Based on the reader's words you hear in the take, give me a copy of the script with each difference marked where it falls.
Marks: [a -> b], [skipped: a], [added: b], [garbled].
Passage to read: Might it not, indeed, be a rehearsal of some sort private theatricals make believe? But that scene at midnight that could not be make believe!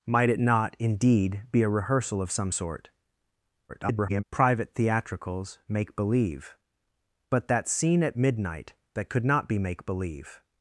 Might it not, indeed, be a rehearsal of some sort [garbled] private theatricals make believe? But that scene at midnight that could not be make believe!